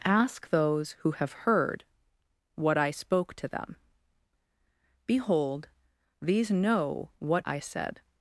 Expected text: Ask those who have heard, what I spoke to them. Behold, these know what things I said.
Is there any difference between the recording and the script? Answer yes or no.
yes